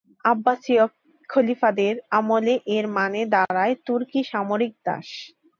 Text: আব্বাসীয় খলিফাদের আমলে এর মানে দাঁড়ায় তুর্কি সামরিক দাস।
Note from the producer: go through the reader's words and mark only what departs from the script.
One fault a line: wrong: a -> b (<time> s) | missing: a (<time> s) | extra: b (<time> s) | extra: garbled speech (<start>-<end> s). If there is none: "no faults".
no faults